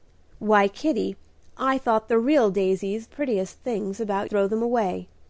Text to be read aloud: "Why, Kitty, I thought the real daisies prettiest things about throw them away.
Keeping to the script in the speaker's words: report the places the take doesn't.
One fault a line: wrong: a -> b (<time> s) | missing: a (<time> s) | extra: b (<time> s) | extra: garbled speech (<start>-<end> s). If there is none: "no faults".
no faults